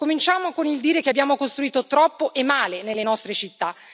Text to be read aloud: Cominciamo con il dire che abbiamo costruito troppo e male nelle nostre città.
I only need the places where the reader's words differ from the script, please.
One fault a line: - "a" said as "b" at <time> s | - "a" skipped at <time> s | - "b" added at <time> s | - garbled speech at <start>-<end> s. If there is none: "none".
none